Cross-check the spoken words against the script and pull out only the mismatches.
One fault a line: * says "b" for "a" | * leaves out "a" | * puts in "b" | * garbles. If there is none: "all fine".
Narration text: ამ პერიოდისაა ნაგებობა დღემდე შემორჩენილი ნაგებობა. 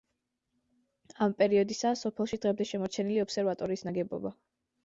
* says "სოფელში" for "ნაგებობა"
* puts in "ობსერვატორიის"